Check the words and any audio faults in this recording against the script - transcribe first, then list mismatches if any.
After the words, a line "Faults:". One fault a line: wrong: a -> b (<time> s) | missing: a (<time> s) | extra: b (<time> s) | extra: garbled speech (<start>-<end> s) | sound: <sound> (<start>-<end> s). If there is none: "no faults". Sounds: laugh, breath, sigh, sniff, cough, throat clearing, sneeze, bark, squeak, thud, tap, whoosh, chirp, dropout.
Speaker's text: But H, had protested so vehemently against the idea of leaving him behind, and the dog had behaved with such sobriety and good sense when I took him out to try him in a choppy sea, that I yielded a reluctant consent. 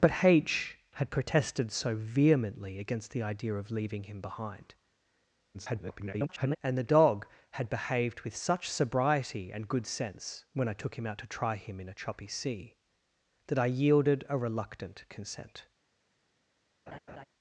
But H, had protested so vehemently against the idea of leaving him behind, [garbled] and the dog had behaved with such sobriety and good sense when I took him out to try him in a choppy sea, that I yielded a reluctant consent.
Faults:
extra: garbled speech (5.5-6.6 s)
sound: laugh (16.9-17.2 s)